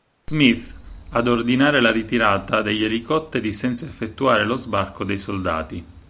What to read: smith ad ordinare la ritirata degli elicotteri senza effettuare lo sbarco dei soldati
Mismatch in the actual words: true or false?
false